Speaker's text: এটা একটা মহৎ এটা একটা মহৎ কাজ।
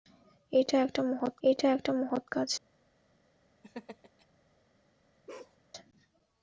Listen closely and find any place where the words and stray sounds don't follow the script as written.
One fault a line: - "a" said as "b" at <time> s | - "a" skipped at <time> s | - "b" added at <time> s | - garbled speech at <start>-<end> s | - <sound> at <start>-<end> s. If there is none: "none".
- laugh at 3.6-4.3 s
- bark at 5.3-5.6 s